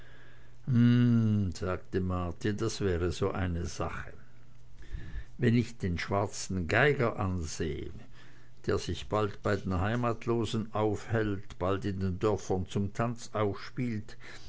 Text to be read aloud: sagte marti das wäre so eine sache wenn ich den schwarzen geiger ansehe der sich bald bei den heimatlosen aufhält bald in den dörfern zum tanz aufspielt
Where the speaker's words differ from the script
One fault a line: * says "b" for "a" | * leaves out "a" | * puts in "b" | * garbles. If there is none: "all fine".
all fine